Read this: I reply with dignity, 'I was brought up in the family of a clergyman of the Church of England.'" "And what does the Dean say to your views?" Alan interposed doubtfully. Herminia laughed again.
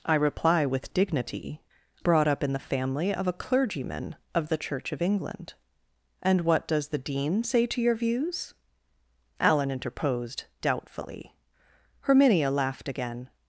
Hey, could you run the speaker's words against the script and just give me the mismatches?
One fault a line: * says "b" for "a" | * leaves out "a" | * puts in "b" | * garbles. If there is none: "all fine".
* leaves out "I was"